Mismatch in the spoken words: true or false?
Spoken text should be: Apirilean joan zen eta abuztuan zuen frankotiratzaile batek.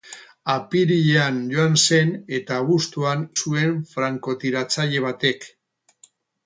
false